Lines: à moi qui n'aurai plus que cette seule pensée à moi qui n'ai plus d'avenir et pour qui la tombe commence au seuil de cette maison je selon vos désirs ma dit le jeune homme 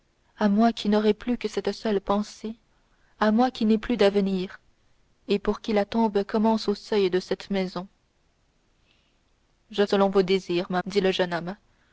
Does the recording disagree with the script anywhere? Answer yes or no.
no